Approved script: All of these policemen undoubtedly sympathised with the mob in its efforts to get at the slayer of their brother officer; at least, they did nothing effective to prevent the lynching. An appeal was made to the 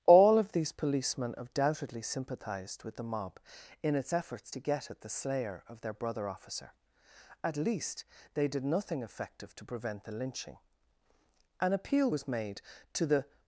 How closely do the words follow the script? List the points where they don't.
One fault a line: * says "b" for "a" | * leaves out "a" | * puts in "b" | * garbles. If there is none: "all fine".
all fine